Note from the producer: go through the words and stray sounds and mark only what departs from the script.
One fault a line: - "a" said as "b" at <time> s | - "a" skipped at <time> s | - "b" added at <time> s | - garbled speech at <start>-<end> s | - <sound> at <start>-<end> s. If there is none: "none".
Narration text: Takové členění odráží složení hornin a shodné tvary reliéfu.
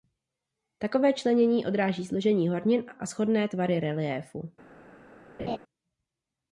- laugh at 5.4-5.6 s